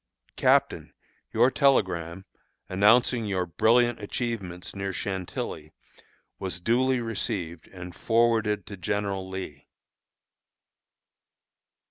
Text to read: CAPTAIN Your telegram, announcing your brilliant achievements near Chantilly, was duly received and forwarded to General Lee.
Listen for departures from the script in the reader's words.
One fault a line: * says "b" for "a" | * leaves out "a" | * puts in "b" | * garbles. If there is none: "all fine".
all fine